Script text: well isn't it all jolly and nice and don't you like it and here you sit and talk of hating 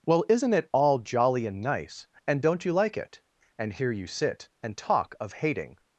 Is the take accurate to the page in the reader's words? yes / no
yes